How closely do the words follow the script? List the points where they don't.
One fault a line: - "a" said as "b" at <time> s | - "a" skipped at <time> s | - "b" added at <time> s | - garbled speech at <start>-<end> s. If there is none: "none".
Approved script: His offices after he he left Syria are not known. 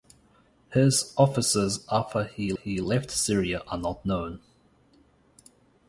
none